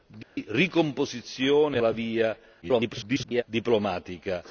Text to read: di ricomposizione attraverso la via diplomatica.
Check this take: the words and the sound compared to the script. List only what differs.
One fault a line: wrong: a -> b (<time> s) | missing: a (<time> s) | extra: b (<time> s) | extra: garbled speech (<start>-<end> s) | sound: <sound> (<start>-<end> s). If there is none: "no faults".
sound: dropout (0.2-0.4 s)
missing: attraverso (1.8 s)
extra: garbled speech (2.6-3.4 s)